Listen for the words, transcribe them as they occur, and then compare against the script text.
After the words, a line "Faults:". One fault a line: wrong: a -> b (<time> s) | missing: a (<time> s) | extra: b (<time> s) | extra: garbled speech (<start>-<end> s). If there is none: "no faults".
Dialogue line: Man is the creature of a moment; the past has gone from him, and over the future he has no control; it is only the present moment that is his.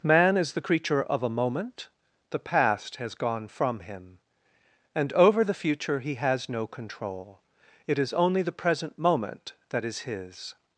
Man is the creature of a moment; the past has gone from him, and over the future he has no control; it is only the present moment that is his.
Faults:
no faults